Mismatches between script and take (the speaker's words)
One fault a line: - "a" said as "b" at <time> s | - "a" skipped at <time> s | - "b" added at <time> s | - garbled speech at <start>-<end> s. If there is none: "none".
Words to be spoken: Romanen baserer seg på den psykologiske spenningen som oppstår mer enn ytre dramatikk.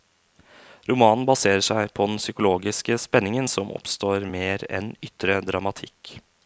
none